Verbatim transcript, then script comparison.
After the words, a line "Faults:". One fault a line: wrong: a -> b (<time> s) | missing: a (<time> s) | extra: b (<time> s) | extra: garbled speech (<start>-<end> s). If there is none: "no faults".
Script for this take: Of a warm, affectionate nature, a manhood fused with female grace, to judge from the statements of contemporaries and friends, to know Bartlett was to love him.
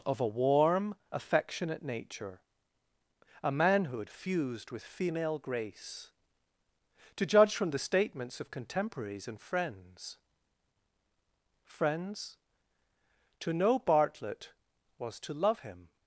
Of a warm, affectionate nature, a manhood fused with female grace, to judge from the statements of contemporaries and friends friends, to know Bartlett was to love him.
Faults:
extra: friends (11.6 s)